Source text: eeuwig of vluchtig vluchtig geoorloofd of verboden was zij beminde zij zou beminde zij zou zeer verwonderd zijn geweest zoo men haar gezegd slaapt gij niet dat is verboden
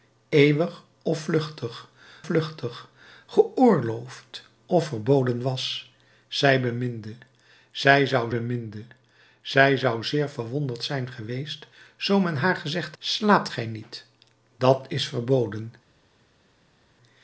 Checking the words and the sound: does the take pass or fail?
pass